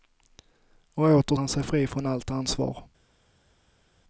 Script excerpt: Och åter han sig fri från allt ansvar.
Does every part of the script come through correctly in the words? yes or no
yes